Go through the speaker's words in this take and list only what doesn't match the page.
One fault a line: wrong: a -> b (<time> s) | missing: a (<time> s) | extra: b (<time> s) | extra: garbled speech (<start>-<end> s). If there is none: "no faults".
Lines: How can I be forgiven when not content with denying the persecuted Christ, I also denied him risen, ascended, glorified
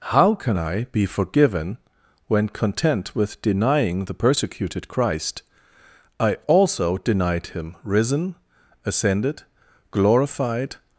missing: not (2.5 s)